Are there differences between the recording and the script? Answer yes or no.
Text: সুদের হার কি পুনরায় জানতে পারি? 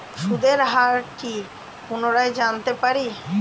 no